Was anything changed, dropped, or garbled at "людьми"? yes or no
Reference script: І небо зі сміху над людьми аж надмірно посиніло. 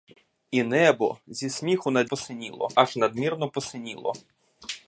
yes